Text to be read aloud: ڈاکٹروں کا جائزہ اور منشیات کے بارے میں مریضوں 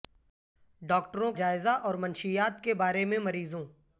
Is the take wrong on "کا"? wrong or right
wrong